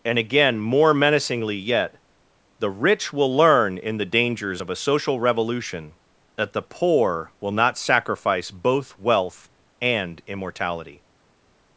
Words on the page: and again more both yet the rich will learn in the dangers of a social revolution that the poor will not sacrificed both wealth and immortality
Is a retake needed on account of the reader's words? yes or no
yes